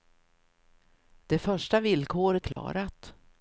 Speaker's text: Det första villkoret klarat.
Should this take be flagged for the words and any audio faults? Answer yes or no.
yes